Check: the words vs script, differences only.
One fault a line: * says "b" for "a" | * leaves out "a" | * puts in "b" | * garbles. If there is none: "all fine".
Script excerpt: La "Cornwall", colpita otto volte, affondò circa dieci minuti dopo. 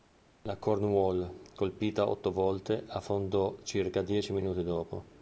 all fine